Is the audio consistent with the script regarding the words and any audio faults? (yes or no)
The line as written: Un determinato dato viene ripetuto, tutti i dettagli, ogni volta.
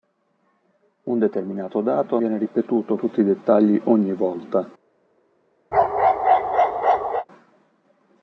no